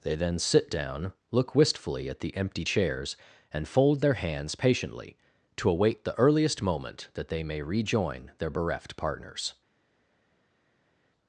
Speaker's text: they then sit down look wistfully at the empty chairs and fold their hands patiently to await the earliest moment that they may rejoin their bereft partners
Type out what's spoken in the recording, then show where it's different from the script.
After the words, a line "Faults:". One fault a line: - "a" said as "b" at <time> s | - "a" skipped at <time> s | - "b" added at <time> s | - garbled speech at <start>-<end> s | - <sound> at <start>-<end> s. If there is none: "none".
they then sit down look wistfully at the empty chairs and fold their hands patiently to await the earliest moment that they may rejoin their bereft partners
Faults:
none